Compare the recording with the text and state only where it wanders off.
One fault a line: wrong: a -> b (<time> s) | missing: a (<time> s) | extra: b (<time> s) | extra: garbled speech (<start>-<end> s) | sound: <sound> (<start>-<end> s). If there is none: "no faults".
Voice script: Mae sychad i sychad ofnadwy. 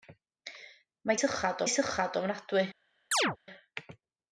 sound: chirp (3.1-3.4 s)